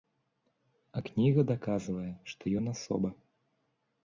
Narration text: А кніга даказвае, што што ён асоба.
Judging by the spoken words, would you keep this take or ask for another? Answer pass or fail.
fail